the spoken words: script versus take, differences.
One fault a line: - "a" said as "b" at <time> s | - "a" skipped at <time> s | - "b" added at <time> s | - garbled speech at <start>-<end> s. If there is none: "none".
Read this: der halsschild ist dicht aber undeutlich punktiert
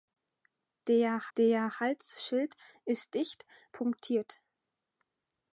- "der" added at 1.4 s
- "aber undeutlich" skipped at 3.5 s